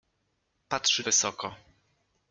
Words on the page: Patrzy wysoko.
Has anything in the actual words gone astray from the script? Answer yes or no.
no